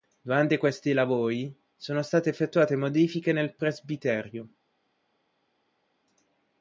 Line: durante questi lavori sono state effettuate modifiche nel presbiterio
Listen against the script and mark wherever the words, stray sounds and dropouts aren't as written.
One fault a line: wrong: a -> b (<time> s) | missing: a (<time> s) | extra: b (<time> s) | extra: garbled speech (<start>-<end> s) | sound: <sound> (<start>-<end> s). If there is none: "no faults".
no faults